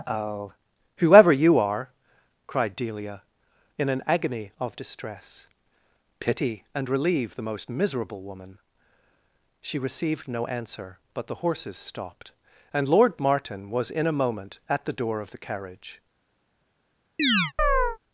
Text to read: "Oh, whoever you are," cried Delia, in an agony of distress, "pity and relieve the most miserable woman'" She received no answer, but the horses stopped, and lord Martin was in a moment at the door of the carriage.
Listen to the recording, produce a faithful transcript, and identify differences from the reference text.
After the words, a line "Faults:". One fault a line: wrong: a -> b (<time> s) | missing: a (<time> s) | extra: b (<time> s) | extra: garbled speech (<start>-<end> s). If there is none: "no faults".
"Oh, whoever you are," cried Delia, in an agony of distress, "pity and relieve the most miserable woman'" She received no answer, but the horses stopped, and lord Martin was in a moment at the door of the carriage.
Faults:
no faults